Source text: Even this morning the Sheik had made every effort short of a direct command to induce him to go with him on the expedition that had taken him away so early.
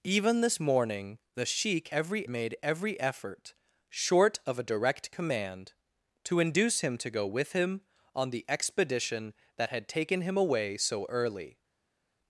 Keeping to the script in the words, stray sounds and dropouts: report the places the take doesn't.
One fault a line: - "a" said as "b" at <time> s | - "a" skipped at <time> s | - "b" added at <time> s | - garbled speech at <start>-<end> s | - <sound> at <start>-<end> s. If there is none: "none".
- "had" said as "every" at 1.9 s